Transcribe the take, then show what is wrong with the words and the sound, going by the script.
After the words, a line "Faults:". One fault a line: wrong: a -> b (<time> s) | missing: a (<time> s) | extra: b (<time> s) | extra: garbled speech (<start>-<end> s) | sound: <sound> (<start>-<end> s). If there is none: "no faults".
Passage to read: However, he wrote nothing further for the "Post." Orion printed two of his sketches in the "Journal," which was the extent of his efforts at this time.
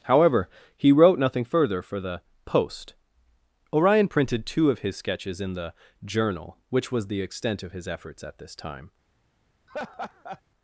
However, he wrote nothing further for the "Post." Orion printed two of his sketches in the "Journal," which was the extent of his efforts at this time.
Faults:
sound: laugh (9.7-10.4 s)